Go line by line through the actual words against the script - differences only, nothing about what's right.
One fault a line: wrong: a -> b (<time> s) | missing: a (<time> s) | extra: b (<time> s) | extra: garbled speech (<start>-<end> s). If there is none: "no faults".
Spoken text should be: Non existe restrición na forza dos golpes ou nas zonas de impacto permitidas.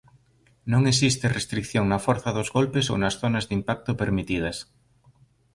no faults